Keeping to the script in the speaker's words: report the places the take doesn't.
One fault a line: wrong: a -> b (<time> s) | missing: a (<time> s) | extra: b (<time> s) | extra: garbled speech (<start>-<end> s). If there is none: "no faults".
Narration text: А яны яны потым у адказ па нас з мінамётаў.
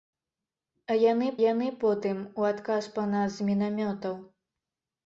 no faults